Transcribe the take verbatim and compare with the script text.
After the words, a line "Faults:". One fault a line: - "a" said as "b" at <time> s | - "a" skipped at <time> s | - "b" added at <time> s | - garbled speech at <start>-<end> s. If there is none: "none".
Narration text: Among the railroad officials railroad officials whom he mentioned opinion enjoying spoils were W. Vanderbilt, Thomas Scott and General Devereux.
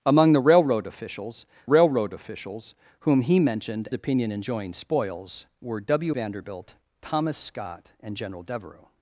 Among the railroad officials railroad officials whom he mentioned opinion enjoying spoils were W. Vanderbilt, Thomas Scott and General Devereux.
Faults:
none